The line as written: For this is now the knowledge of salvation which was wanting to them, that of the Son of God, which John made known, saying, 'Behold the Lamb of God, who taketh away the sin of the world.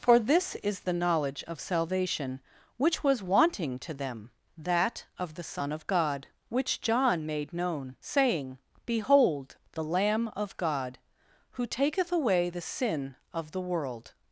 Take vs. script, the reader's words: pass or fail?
fail